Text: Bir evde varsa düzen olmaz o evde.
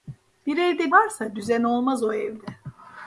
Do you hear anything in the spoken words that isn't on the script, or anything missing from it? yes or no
no